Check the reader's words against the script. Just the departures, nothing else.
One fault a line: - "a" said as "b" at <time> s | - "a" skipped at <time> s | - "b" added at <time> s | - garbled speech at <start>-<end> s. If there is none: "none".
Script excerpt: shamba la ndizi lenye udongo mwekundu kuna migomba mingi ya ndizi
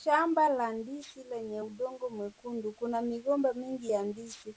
none